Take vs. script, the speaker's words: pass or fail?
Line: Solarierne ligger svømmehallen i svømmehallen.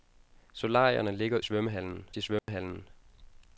pass